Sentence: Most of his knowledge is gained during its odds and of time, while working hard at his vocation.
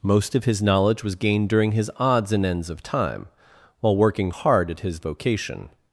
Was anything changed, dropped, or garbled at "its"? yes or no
yes